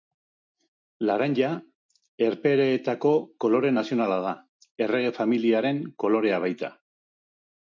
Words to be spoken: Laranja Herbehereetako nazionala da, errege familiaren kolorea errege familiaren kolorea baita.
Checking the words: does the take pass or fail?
fail